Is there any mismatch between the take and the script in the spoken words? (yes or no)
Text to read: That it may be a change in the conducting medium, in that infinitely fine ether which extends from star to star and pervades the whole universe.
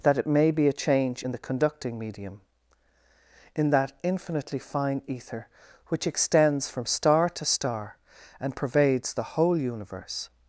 no